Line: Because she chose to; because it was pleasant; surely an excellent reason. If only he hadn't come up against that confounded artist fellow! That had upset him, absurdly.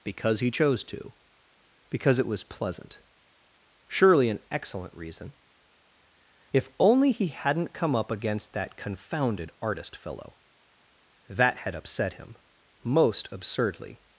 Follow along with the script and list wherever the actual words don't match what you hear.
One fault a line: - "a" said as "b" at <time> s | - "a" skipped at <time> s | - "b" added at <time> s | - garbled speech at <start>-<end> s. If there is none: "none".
- "she" said as "he" at 0.4 s
- "most" added at 12.8 s